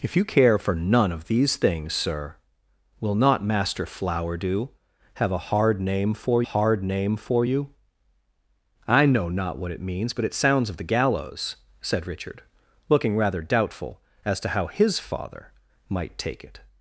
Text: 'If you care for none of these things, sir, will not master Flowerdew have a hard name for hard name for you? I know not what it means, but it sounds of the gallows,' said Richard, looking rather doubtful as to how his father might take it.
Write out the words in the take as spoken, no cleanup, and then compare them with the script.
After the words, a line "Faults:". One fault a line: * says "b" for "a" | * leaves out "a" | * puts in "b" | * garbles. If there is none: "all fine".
'If you care for none of these things, sir, will not master Flowerdew have a hard name for hard name for you? I know not what it means, but it sounds of the gallows,' said Richard, looking rather doubtful as to how his father might take it.
Faults:
all fine